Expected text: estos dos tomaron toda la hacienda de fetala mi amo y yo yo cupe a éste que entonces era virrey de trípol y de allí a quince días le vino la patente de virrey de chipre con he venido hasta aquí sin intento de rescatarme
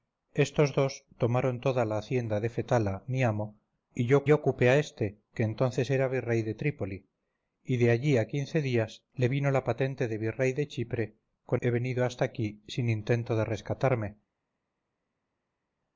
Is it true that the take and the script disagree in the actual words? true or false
false